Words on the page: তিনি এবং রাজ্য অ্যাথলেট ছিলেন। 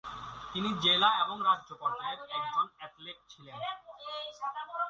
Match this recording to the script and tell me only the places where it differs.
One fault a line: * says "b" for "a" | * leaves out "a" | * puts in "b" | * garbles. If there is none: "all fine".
* puts in "জেলা"
* puts in "পর্যায়ের একজন"